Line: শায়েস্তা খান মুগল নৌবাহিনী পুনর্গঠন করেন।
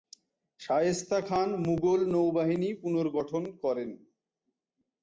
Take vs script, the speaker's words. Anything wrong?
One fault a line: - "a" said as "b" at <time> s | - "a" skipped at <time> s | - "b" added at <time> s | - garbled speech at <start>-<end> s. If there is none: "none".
none